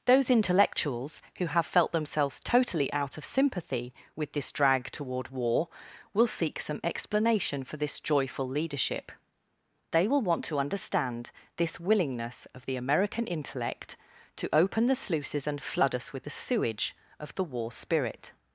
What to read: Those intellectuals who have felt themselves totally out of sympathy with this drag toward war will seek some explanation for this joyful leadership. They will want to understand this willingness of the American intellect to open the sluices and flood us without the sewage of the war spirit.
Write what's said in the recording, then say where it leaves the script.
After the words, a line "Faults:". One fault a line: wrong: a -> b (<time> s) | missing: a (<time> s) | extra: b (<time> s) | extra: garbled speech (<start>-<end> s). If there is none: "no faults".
Those intellectuals who have felt themselves totally out of sympathy with this drag toward war will seek some explanation for this joyful leadership. They will want to understand this willingness of the American intellect to open the sluices and flood us with the sewage of the war spirit.
Faults:
wrong: without -> with (16.1 s)